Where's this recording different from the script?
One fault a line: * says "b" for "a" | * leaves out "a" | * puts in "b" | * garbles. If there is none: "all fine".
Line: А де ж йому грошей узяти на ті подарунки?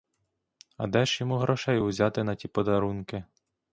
all fine